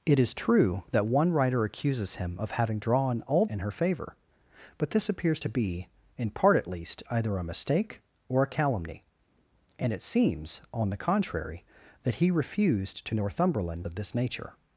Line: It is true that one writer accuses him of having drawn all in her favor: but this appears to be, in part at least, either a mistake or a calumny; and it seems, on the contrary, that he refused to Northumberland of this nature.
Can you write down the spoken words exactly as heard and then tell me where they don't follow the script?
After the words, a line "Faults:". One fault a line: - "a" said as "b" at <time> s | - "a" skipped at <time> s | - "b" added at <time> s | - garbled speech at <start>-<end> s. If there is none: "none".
It is true that one writer accuses him of having drawn all in her favor: but this appears to be, in part at least, either a mistake or a calumny; and it seems, on the contrary, that he refused to Northumberland of this nature.
Faults:
none